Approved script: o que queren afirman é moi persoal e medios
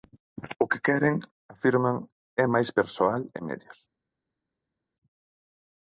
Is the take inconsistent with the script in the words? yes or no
yes